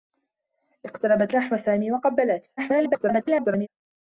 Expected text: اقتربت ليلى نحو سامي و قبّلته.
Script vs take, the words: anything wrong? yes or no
yes